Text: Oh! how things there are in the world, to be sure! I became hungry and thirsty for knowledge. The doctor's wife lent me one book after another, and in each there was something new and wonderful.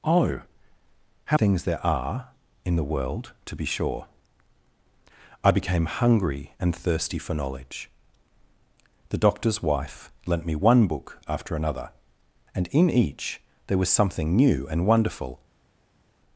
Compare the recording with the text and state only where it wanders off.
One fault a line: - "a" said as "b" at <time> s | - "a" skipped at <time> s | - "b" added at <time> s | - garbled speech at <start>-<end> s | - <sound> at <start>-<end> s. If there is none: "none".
none